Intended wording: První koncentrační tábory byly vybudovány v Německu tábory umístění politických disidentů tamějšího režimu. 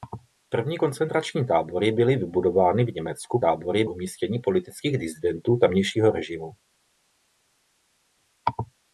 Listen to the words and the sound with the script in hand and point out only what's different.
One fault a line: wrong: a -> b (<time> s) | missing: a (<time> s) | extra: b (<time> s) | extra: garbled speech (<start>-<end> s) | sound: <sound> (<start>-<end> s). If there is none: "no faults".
no faults